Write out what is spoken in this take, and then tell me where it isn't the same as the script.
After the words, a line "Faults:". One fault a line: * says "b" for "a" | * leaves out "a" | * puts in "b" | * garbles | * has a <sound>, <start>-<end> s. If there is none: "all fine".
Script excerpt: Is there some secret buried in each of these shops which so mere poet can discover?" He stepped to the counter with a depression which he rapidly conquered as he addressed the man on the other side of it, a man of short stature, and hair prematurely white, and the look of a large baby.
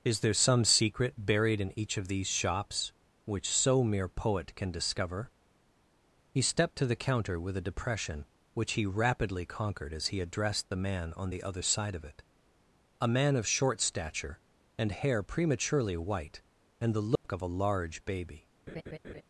Is there some secret buried in each of these shops which so mere poet can discover?" He stepped to the counter with a depression which he rapidly conquered as he addressed the man on the other side of it, a man of short stature, and hair prematurely white, and the look of a large baby.
Faults:
* has a dropout, 17.2-17.2 s
* has a laugh, 18.7-19.2 s